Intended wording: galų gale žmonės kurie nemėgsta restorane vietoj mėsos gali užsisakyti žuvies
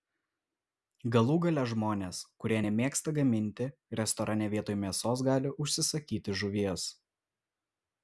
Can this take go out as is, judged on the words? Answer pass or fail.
fail